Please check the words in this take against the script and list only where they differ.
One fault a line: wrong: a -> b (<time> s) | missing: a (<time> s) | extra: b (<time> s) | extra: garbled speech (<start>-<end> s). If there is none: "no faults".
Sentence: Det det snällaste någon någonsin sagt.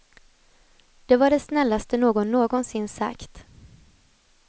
extra: var (1.2 s)